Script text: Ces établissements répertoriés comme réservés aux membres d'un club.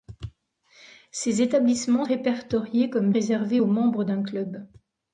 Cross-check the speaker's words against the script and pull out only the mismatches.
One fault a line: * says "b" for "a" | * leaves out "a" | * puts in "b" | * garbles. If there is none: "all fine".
all fine